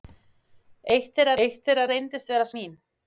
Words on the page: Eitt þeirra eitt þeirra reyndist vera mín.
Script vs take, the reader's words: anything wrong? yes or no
no